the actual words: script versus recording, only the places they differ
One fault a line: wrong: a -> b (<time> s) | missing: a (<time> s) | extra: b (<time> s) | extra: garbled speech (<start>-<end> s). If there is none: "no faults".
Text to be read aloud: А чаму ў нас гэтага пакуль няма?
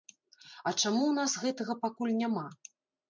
no faults